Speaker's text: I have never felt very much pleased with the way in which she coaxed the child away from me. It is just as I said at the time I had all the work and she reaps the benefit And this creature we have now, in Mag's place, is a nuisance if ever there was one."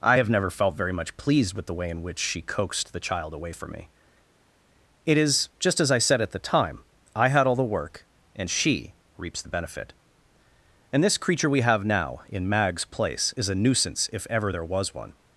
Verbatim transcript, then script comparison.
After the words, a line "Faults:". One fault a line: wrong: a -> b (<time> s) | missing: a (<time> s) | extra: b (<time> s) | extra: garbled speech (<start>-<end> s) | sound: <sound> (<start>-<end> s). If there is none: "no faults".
I have never felt very much pleased with the way in which she coaxed the child away from me. It is just as I said at the time I had all the work and she reaps the benefit And this creature we have now, in Mag's place, is a nuisance if ever there was one."
Faults:
no faults